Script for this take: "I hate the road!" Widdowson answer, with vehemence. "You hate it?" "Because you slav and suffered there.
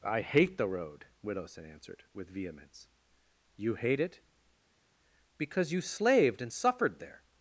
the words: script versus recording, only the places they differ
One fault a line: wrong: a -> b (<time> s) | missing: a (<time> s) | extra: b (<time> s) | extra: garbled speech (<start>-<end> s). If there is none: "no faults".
wrong: answer -> answered (1.6 s)
wrong: slav -> slaved (5.8 s)